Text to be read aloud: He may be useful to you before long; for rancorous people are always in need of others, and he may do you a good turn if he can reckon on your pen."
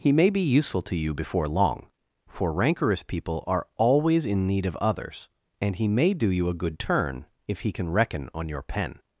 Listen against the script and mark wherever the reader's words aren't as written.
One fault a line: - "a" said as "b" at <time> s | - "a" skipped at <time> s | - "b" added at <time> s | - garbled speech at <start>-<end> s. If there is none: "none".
none